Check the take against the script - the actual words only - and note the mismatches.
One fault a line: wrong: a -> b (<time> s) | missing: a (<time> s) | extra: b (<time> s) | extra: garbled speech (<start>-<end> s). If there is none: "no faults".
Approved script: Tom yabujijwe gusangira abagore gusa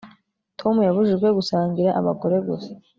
no faults